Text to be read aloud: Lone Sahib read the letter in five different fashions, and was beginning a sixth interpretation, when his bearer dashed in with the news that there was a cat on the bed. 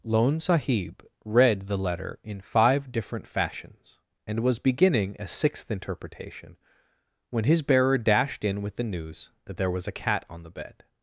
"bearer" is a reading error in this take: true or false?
false